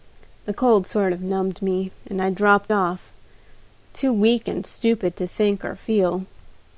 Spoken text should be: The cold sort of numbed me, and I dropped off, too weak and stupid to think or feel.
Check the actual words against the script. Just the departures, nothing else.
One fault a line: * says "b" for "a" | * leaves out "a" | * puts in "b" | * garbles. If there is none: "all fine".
all fine